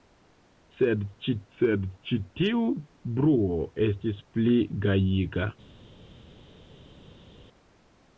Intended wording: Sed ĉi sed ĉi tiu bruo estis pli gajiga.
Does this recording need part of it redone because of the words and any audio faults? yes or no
no